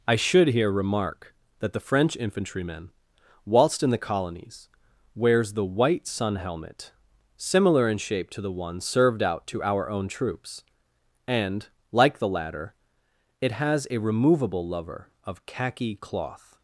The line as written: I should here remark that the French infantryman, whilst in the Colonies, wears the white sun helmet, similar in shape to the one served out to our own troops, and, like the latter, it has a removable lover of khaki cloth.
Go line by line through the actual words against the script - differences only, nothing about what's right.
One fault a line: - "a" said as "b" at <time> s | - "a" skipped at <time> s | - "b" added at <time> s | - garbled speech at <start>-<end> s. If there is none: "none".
none